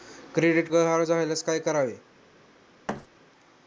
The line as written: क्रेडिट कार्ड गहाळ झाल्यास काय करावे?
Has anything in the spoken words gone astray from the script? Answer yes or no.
yes